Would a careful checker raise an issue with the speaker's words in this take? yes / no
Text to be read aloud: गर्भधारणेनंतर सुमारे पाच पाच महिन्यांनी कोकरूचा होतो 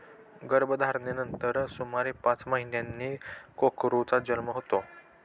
yes